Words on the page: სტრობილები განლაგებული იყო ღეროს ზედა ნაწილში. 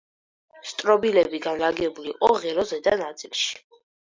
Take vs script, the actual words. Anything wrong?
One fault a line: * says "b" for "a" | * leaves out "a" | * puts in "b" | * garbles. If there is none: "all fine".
all fine